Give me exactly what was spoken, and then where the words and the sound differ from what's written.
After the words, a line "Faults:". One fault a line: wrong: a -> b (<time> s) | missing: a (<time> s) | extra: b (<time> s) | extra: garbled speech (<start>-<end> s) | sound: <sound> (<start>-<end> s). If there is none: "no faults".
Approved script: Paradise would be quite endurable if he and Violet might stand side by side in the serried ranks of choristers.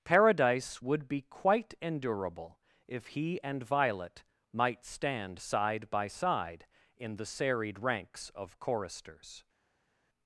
Paradise would be quite endurable if he and Violet might stand side by side in the serried ranks of choristers.
Faults:
no faults